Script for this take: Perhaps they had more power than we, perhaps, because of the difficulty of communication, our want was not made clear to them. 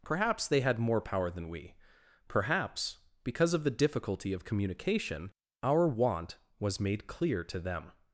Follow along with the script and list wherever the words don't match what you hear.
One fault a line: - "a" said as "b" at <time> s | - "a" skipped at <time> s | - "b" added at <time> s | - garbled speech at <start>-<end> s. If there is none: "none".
- "not" skipped at 6.8 s